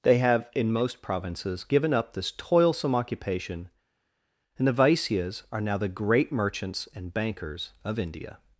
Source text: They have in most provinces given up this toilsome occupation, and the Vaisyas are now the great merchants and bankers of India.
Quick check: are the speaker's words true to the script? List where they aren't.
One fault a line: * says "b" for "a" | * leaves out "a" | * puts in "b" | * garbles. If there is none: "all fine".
all fine